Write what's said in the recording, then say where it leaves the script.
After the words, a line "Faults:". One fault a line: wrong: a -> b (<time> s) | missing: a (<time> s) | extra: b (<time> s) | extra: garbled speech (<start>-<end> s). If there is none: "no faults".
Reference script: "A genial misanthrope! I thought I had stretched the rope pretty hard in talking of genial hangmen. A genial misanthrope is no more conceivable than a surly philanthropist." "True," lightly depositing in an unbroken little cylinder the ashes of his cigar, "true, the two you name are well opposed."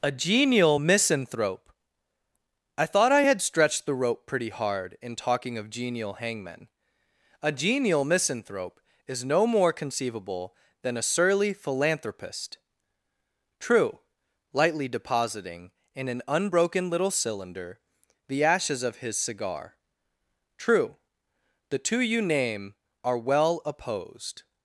"A genial misanthrope! I thought I had stretched the rope pretty hard in talking of genial hangmen. A genial misanthrope is no more conceivable than a surly philanthropist." "True," lightly depositing in an unbroken little cylinder the ashes of his cigar, "true, the two you name are well opposed."
Faults:
no faults